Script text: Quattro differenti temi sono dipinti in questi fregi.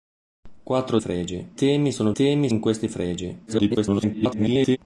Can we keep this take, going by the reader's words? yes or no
no